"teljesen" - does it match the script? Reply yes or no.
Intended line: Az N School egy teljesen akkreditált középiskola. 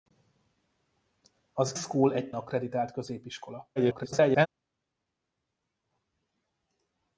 no